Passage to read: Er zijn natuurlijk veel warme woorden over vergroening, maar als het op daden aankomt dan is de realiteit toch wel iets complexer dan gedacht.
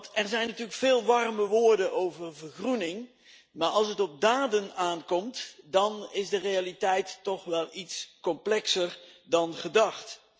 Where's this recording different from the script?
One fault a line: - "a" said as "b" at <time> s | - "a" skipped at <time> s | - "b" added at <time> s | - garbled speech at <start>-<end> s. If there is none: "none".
none